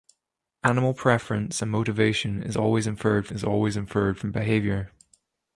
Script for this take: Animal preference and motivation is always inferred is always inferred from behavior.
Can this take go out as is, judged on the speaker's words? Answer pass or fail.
pass